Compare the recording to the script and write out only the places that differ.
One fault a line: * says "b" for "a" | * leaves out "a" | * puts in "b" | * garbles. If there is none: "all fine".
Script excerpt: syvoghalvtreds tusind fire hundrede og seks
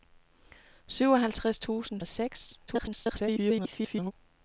* leaves out "fire hundrede"
* garbles